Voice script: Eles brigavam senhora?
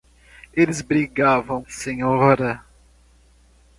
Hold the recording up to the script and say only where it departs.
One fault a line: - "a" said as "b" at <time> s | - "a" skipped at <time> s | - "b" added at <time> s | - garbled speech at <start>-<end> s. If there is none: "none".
none